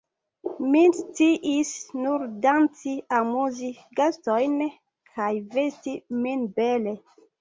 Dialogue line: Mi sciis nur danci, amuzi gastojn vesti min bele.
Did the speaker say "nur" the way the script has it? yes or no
yes